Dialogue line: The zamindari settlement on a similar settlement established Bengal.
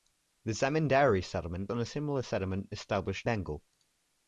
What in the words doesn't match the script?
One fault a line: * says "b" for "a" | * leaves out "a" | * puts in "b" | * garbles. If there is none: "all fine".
all fine